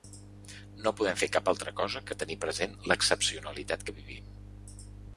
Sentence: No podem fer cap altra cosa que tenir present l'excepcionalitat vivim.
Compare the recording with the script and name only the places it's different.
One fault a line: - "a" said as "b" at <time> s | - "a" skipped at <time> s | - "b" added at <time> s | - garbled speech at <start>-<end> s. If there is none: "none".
- "que" added at 3.9 s